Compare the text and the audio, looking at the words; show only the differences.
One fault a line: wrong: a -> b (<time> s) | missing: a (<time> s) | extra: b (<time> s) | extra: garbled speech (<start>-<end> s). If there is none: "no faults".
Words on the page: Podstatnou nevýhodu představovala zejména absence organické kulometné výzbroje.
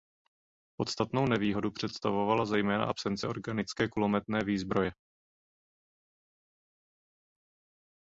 no faults